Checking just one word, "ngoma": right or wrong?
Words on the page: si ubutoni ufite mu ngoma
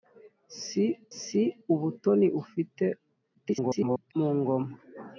right